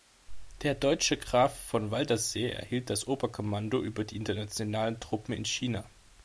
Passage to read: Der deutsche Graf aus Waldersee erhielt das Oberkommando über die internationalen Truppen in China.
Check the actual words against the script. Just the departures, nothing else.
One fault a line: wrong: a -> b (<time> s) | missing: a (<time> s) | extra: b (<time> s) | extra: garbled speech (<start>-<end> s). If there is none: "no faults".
wrong: aus -> von (1.6 s)